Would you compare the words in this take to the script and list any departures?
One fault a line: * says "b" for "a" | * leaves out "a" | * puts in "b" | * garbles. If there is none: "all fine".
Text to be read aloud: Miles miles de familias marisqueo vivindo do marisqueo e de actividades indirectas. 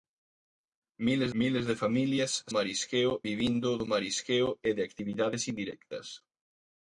all fine